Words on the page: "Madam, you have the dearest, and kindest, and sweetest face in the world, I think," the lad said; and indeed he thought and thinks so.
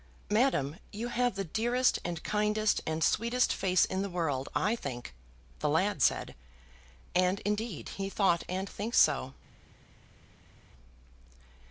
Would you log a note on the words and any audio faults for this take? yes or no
no